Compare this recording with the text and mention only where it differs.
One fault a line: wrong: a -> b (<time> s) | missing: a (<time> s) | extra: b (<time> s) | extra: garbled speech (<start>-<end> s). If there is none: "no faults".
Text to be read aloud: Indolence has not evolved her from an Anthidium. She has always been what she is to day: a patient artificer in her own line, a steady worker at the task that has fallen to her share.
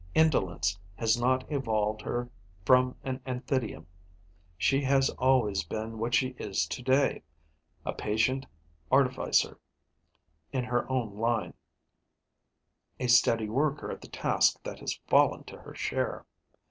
no faults